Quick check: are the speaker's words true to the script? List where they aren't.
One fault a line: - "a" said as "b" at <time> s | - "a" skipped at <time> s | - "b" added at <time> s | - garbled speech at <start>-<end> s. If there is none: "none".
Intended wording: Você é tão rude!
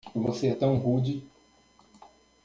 none